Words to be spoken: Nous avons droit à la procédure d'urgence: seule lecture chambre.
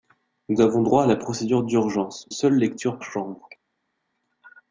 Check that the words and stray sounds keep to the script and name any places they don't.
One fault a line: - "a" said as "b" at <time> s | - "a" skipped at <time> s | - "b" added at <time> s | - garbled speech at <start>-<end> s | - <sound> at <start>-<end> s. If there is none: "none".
none